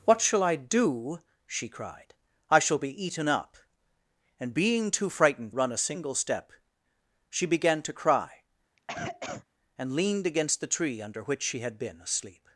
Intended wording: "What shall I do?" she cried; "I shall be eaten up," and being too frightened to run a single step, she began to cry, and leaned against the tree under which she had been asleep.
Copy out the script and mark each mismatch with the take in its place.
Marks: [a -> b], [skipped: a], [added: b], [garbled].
"What shall I do?" she cried; "I shall be eaten up," and being too frightened [skipped: to] run a single step, she began to cry, and leaned against the tree under which she had been asleep.